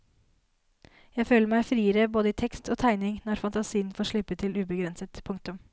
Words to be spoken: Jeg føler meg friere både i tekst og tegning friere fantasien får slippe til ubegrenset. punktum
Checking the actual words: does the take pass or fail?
fail